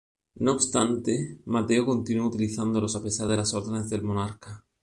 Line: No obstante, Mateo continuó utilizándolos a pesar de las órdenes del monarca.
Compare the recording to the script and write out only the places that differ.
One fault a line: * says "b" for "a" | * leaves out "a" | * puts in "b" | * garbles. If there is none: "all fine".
all fine